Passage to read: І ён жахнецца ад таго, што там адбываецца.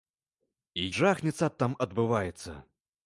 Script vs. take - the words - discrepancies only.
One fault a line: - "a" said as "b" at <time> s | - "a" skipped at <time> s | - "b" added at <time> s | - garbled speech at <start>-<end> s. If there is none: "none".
- "ён" skipped at 0.8 s
- "таго што" skipped at 1.6 s